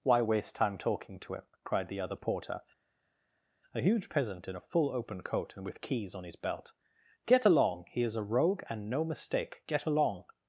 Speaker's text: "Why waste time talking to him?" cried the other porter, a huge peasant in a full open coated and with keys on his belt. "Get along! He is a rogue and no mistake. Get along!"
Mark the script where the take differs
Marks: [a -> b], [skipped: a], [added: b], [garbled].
"Why waste time talking to him?" cried the other porter, a huge peasant in a full open [coated -> coat] and with keys on his belt. "Get along! He is a rogue and no mistake. Get along!"